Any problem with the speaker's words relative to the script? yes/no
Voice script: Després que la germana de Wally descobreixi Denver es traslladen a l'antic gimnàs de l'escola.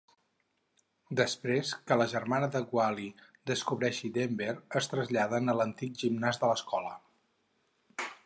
no